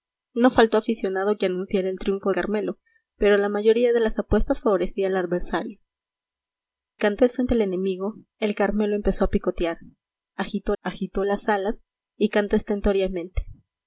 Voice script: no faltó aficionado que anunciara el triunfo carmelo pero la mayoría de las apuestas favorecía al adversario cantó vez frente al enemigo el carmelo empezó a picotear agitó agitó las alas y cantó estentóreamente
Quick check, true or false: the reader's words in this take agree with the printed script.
true